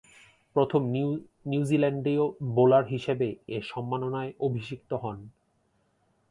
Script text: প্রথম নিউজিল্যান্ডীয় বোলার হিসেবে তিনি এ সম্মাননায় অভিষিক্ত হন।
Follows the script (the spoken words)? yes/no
no